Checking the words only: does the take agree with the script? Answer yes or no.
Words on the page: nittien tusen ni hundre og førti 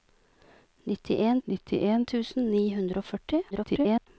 no